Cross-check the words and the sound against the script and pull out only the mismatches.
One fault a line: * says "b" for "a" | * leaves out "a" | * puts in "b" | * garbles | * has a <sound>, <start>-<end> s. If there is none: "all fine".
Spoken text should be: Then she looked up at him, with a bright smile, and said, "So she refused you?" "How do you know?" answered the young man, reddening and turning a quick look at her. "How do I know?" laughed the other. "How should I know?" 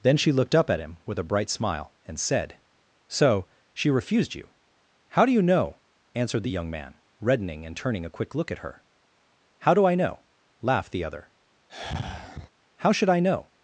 * has a sigh, 11.7-12.5 s